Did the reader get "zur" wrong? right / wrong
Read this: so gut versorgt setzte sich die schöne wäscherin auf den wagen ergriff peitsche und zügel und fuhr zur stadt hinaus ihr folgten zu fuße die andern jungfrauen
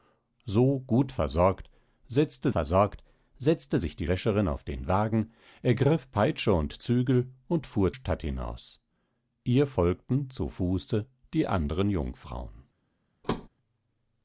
wrong